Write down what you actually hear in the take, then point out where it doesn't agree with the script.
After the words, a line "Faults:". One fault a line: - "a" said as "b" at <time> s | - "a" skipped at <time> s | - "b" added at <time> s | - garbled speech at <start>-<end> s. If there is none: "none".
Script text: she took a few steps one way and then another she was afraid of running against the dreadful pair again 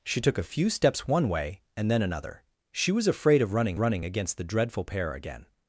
she took a few steps one way and then another she was afraid of running running against the dreadful pair again
Faults:
- "running" added at 3.8 s